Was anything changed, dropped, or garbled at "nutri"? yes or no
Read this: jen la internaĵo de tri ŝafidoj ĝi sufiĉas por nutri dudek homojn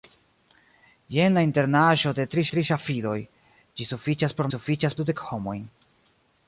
yes